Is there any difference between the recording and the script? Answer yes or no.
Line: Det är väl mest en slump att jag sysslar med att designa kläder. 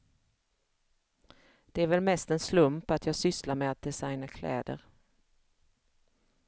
no